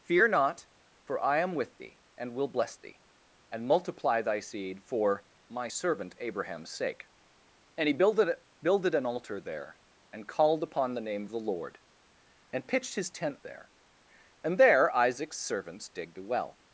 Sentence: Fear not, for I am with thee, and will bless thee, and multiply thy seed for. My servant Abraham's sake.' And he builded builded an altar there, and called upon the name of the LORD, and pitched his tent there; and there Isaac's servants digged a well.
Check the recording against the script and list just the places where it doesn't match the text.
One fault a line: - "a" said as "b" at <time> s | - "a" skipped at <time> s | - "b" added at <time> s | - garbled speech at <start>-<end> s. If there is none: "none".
none